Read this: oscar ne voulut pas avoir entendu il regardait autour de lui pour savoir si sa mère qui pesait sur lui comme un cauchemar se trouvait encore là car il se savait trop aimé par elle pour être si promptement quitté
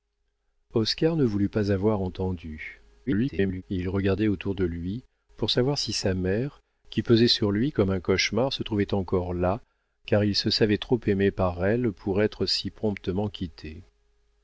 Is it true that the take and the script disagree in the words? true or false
true